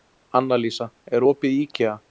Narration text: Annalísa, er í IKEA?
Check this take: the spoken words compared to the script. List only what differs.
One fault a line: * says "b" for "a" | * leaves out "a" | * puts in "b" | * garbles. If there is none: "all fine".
* puts in "opið"